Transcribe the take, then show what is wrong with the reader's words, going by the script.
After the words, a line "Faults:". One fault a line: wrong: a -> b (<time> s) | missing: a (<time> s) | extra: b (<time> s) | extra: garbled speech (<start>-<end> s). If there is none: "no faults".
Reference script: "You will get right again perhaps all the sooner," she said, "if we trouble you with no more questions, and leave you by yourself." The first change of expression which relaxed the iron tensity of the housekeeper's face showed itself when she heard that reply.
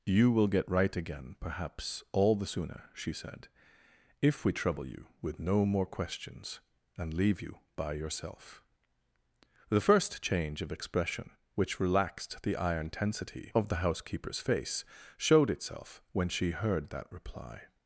"You will get right again perhaps all the sooner," she said, "if we trouble you with no more questions, and leave you by yourself." The first change of expression which relaxed the iron tensity of the housekeeper's face showed itself when she heard that reply.
Faults:
no faults